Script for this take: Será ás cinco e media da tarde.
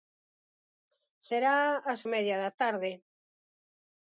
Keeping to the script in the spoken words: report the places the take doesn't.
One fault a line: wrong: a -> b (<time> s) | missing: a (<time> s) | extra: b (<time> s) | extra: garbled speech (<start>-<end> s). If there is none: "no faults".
missing: cinco (2.0 s)